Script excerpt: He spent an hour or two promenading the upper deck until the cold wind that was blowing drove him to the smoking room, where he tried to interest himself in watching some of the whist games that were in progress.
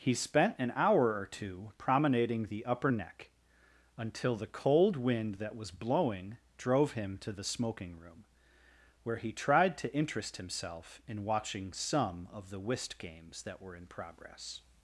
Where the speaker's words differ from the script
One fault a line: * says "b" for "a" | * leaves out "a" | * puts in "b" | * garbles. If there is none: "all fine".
* says "neck" for "deck"